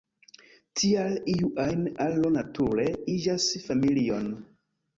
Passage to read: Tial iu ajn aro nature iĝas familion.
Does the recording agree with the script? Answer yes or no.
yes